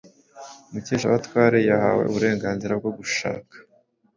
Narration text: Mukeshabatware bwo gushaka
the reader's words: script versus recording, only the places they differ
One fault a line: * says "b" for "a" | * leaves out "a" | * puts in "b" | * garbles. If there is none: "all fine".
* puts in "yahawe uburenganzira"